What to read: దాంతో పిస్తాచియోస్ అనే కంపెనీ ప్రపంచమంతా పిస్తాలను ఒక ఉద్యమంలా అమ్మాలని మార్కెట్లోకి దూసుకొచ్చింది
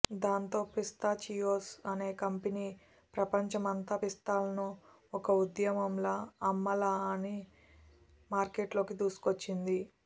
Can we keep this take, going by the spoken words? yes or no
yes